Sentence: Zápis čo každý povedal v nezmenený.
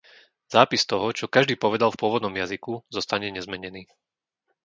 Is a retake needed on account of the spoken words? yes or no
yes